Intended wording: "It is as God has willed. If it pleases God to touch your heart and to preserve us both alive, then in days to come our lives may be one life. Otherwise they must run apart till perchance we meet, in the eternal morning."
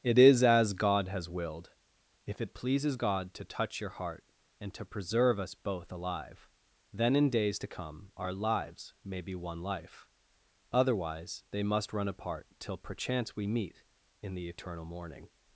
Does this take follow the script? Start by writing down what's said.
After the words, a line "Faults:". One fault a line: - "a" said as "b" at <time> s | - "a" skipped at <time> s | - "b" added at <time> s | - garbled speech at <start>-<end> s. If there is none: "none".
"It is as God has willed. If it pleases God to touch your heart and to preserve us both alive, then in days to come our lives may be one life. Otherwise they must run apart till perchance we meet, in the eternal morning."
Faults:
none